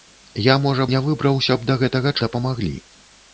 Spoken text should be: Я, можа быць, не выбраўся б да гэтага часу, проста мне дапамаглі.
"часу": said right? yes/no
no